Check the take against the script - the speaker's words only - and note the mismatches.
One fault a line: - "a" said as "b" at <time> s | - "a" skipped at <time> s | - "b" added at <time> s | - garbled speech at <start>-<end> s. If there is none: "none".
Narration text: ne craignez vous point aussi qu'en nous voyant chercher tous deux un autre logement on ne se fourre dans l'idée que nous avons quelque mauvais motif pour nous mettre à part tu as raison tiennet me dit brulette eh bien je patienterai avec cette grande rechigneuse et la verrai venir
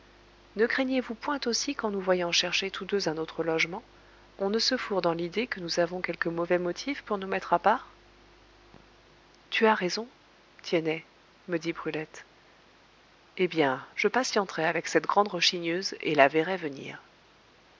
none